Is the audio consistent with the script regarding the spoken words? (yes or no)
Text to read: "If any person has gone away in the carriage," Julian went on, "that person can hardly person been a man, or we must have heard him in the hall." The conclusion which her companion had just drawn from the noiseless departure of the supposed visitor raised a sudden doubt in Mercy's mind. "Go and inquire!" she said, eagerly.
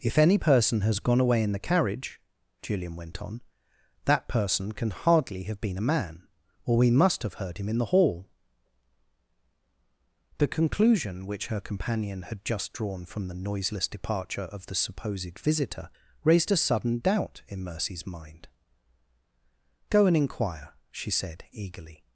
no